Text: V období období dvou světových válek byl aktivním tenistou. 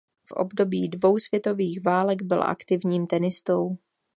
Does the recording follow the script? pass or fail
fail